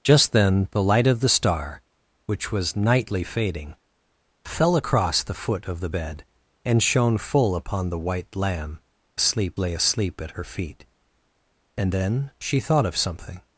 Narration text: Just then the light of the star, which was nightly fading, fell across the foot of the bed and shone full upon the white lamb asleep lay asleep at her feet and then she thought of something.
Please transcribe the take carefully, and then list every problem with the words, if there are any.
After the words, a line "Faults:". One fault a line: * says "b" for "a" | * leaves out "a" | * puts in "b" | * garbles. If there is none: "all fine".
Just then the light of the star, which was nightly fading, fell across the foot of the bed and shone full upon the white lamb asleep lay asleep at her feet and then she thought of something.
Faults:
all fine